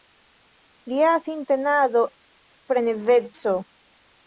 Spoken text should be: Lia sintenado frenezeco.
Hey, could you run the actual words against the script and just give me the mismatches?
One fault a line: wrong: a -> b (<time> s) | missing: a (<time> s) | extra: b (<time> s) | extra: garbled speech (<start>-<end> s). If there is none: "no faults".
no faults